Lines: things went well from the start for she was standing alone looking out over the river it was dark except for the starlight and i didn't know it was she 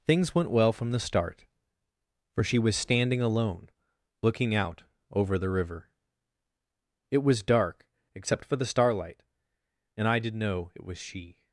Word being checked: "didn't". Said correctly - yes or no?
no